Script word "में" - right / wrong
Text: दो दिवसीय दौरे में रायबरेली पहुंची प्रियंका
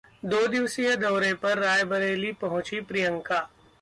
wrong